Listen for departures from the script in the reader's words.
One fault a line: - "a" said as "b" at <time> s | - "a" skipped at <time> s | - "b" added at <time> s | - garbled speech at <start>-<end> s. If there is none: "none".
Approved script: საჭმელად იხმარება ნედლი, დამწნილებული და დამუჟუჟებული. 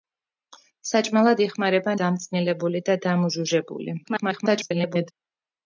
- "ნედლი" skipped at 1.9 s
- garbled speech at 4.0-5.1 s